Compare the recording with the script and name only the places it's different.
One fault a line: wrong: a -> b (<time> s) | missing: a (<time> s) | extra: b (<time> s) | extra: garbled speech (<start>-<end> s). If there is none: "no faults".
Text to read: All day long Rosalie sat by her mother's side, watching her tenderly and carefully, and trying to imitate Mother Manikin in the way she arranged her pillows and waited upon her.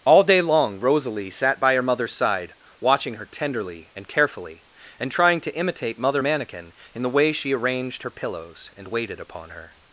no faults